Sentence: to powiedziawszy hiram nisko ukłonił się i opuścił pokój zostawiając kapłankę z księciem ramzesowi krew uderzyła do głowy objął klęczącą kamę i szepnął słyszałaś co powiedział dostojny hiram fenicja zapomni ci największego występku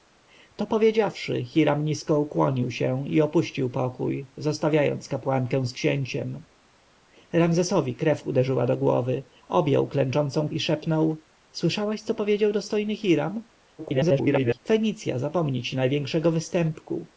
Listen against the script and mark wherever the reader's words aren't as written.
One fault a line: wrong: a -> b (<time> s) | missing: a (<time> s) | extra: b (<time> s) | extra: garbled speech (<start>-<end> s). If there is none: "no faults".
missing: kamę (10.5 s)
extra: garbled speech (13.8-14.6 s)